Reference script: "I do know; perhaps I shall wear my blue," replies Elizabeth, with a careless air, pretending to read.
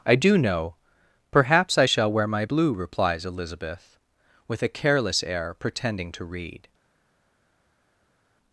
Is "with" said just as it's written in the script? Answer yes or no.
yes